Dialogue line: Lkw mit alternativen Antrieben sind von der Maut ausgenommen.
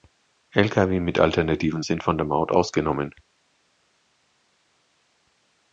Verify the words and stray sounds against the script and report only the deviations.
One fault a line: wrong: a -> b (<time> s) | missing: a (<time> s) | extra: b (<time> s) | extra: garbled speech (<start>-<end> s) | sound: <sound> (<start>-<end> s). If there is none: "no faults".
missing: Antrieben (1.9 s)